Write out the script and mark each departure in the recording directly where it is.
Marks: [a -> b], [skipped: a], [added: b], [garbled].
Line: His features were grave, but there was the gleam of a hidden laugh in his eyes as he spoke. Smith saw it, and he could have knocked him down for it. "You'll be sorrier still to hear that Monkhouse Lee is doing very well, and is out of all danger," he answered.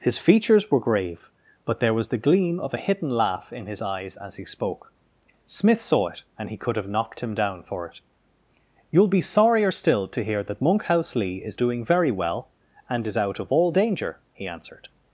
His features were grave, but there was the gleam of a hidden laugh in his eyes as he spoke. Smith saw it, and he could have knocked him down for it. "You'll be sorrier still to hear that Monkhouse Lee is doing very well, and is out of all danger," he answered.